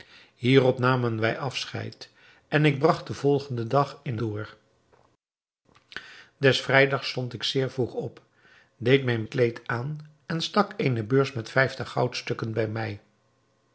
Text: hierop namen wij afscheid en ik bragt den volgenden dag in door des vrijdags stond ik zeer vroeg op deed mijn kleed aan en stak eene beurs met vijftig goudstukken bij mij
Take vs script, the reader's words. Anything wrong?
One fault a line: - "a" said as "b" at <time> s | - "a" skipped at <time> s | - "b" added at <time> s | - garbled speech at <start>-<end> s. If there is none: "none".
none